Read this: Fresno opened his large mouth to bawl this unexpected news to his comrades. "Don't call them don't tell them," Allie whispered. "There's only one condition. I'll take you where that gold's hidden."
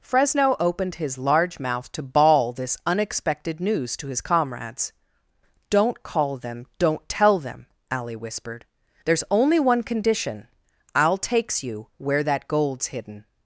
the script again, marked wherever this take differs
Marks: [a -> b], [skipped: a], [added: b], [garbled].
Fresno opened his large mouth to bawl this unexpected news to his comrades. "Don't call them don't tell them," Allie whispered. "There's only one condition. I'll [take -> takes] you where that gold's hidden."